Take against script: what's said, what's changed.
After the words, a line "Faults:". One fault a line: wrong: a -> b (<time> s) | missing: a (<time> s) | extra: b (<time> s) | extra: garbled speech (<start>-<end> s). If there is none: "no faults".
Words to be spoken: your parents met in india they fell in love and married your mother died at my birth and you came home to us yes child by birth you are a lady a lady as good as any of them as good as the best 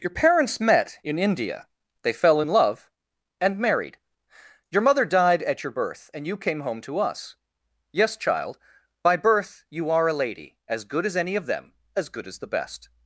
your parents met in india they fell in love and married your mother died at your birth and you came home to us yes child by birth you are a lady as good as any of them as good as the best
Faults:
wrong: my -> your (5.6 s)
missing: a lady (10.6 s)